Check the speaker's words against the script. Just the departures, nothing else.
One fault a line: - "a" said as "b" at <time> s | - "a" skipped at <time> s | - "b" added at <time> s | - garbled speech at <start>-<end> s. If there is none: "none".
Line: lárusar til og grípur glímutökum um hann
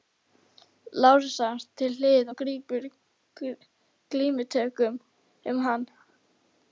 - "hliðar" added at 2.0 s